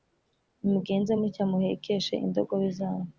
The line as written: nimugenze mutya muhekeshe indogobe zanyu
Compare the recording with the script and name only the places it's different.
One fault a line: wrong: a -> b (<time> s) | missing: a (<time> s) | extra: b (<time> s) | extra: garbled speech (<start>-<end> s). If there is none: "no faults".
no faults